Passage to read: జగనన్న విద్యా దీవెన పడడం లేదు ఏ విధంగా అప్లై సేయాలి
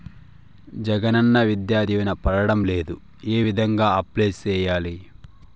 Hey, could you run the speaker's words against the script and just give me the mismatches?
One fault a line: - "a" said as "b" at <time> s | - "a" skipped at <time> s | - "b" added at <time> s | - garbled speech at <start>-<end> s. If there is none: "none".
none